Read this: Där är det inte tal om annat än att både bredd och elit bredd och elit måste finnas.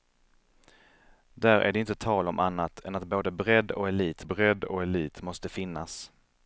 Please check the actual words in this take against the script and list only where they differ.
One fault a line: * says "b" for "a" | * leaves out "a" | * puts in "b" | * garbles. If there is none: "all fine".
all fine